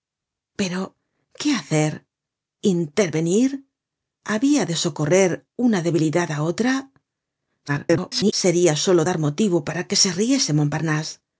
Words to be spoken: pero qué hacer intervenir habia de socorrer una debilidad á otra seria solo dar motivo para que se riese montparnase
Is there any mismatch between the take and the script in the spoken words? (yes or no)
yes